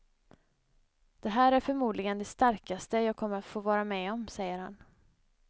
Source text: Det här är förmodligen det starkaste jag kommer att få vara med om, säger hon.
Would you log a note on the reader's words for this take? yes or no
yes